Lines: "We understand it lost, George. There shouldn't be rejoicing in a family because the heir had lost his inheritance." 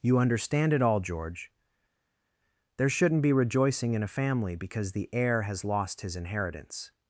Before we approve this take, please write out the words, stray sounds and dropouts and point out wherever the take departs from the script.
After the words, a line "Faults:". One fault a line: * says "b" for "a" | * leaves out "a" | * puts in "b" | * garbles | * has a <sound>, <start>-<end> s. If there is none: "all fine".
"You understand it all, George. There shouldn't be rejoicing in a family because the heir has lost his inheritance."
Faults:
* says "You" for "We"
* says "all" for "lost"
* says "has" for "had"